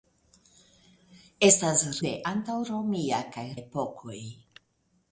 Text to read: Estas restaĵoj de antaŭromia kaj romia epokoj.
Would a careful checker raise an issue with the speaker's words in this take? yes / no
yes